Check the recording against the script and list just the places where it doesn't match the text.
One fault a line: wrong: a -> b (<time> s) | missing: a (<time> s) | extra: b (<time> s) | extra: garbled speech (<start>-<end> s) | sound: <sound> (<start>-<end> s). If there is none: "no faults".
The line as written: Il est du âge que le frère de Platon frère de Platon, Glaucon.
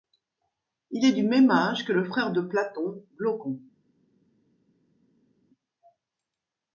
extra: même (1.2 s)
missing: frère de Platon (3.0 s)